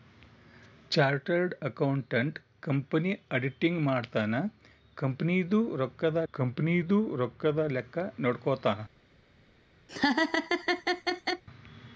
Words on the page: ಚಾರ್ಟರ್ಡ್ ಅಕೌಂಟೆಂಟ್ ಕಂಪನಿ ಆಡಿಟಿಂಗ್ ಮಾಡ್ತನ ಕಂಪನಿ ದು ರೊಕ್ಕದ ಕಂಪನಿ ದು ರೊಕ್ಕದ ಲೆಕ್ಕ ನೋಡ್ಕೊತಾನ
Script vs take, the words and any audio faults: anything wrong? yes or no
yes